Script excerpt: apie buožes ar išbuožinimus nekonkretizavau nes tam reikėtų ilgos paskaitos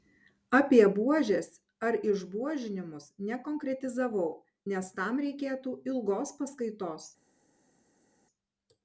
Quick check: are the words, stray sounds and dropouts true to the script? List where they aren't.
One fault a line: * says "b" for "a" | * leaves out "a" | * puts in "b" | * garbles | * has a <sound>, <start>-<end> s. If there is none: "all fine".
all fine